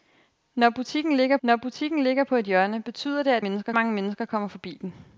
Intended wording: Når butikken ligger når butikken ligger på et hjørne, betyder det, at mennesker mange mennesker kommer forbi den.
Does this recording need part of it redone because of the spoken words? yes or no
no